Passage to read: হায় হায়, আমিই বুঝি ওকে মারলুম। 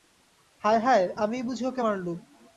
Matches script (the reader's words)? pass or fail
pass